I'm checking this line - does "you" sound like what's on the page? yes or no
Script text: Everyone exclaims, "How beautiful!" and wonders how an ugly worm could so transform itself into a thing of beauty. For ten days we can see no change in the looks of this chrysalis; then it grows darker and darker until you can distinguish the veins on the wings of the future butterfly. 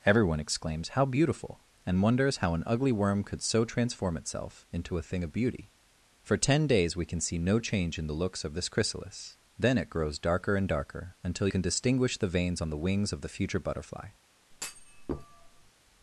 no